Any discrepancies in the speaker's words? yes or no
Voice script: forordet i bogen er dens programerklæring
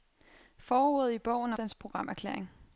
no